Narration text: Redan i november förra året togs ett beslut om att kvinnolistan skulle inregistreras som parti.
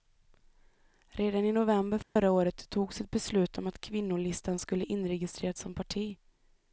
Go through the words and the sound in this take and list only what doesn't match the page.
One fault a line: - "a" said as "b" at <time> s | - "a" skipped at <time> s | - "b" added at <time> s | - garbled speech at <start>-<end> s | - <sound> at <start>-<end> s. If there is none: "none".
- dropout at 2.0-2.2 s